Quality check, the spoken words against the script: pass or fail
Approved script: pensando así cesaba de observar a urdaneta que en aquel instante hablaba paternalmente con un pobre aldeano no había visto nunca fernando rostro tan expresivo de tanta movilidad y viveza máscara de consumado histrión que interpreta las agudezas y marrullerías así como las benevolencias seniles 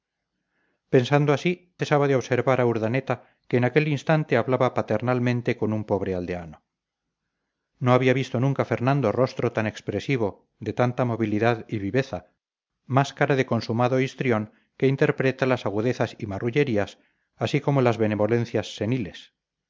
pass